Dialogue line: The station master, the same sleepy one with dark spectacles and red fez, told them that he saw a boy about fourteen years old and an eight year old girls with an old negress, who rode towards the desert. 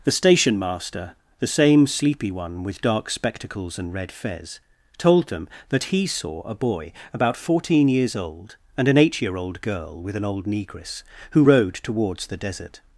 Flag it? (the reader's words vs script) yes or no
yes